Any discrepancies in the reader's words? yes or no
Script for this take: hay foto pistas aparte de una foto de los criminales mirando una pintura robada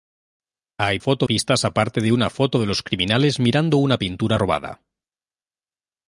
no